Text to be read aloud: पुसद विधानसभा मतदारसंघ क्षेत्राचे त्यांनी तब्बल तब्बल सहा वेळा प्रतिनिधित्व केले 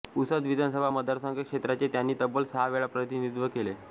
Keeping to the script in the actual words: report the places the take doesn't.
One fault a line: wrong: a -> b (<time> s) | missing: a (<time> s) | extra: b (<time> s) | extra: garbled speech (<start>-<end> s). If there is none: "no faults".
missing: तब्बल (2.4 s)